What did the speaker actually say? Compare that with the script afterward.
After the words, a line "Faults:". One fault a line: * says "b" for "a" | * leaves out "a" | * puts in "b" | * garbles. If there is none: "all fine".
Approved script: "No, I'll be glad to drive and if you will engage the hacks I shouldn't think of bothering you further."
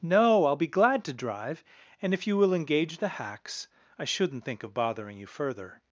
"No, I'll be glad to drive and if you will engage the hacks I shouldn't think of bothering you further."
Faults:
all fine